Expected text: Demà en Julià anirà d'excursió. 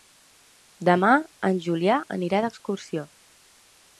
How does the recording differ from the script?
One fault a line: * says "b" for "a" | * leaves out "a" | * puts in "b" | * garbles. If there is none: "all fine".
all fine